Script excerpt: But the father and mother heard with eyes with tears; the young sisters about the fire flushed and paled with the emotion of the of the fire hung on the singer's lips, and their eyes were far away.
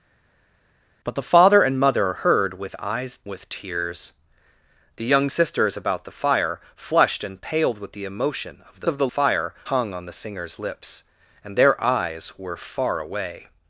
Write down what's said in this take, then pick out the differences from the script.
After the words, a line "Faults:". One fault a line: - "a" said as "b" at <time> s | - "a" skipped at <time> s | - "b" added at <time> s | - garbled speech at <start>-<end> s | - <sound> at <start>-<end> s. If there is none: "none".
But the father and mother heard with eyes with tears; the young sisters about the fire flushed and paled with the emotion of the of the fire hung on the singer's lips, and their eyes were far away.
Faults:
none